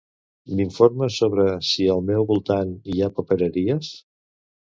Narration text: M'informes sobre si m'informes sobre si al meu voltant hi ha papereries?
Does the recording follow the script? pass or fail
fail